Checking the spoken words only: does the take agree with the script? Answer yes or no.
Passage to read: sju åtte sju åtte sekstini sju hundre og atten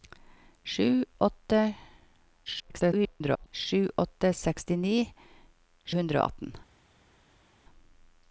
no